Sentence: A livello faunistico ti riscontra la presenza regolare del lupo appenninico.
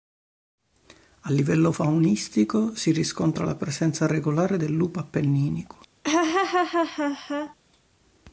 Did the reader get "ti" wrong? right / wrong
wrong